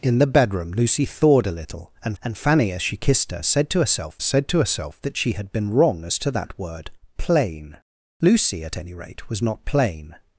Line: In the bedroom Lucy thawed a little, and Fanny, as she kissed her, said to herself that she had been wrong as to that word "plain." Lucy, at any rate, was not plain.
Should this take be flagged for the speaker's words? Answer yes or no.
yes